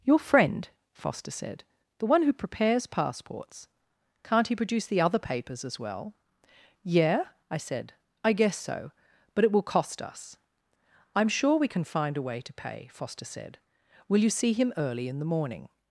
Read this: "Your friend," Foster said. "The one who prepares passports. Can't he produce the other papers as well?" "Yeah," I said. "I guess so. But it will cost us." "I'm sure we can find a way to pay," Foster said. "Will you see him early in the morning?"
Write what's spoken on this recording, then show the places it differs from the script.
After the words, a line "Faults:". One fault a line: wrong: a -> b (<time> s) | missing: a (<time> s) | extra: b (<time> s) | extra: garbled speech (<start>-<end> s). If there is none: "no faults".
"Your friend," Foster said. "The one who prepares passports. Can't he produce the other papers as well?" "Yeah," I said. "I guess so. But it will cost us." "I'm sure we can find a way to pay," Foster said. "Will you see him early in the morning?"
Faults:
no faults